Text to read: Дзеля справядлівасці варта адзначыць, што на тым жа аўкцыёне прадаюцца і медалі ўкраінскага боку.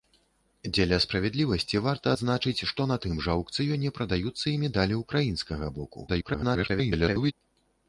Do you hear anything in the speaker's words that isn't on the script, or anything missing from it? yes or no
yes